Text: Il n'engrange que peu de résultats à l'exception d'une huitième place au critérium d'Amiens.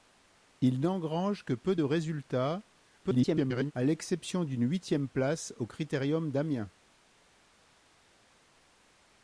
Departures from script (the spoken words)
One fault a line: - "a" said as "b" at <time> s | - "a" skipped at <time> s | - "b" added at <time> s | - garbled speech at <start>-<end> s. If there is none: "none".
- garbled speech at 3.0-3.7 s